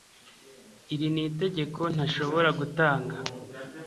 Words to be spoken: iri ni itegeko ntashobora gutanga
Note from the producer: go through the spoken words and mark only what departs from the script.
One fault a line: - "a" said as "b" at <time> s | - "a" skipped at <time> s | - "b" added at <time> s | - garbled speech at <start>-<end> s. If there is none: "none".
none